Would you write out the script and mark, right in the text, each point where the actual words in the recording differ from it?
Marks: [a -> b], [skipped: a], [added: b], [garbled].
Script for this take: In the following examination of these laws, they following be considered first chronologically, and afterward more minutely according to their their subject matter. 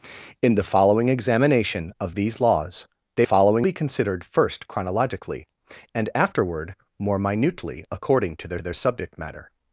In the following examination of these laws, they following be considered first chronologically, and afterward more minutely according to their their subject matter.